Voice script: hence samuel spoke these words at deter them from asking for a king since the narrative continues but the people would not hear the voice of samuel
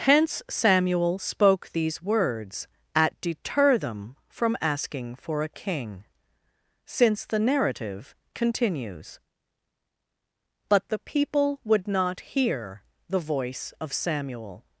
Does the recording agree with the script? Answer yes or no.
yes